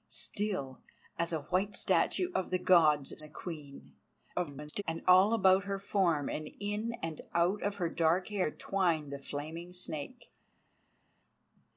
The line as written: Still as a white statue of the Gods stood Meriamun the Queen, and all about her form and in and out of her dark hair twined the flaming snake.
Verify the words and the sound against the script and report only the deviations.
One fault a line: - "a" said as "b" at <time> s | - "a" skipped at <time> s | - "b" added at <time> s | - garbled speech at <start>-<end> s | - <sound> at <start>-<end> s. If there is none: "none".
- "stood Meriamun" skipped at 3.2 s
- garbled speech at 4.3-4.8 s